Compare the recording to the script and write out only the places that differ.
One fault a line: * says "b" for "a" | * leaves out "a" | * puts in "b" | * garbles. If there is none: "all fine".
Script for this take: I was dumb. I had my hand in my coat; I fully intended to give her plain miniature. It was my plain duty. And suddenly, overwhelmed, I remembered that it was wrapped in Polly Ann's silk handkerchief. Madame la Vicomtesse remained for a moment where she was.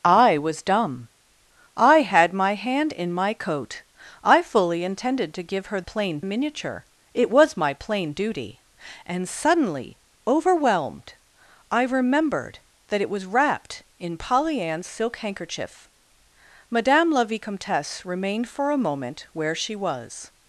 all fine